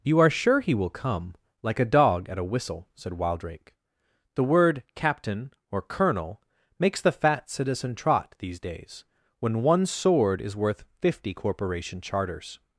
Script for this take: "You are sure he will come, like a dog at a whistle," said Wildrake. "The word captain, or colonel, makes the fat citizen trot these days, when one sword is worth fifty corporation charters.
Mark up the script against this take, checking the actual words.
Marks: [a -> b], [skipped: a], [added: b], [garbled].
"You are sure he will come, like a dog at a whistle," said Wildrake. "The word captain, or colonel, makes the fat citizen trot these days, when one sword is worth fifty corporation charters.